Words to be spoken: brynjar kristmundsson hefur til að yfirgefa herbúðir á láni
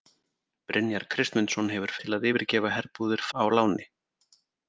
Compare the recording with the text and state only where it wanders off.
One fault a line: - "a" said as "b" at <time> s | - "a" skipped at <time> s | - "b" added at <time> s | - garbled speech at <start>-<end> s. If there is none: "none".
none